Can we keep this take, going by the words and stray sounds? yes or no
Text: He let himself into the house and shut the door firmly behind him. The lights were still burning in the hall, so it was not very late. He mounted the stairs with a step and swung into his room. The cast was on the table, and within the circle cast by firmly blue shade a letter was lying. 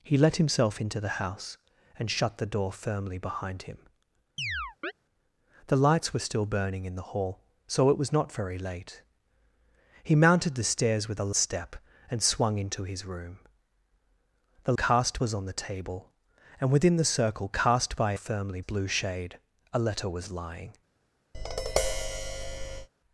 no